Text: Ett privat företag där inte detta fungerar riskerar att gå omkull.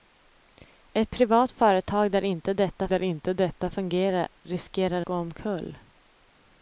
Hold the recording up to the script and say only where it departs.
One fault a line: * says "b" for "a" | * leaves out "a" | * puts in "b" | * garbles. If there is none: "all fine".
* puts in "där inte detta"
* leaves out "att"